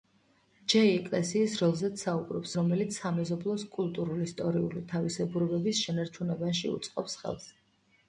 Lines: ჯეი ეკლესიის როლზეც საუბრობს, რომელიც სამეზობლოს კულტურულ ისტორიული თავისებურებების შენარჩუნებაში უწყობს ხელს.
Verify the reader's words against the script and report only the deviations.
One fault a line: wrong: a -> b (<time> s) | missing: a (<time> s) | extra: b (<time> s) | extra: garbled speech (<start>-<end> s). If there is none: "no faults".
no faults